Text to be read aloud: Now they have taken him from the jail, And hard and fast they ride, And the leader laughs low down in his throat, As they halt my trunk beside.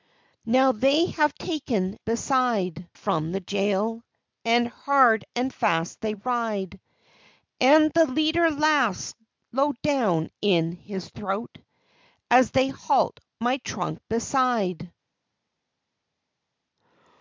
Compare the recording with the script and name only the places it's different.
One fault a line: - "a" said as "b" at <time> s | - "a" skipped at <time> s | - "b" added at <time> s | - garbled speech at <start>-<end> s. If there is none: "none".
- "him" said as "beside" at 2.0 s